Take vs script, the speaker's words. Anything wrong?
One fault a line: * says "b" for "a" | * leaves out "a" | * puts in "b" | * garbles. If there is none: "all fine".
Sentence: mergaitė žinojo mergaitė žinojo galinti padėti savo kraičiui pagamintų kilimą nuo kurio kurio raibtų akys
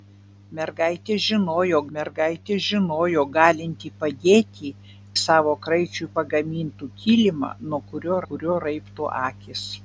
all fine